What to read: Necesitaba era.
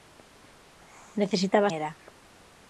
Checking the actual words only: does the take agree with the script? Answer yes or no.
yes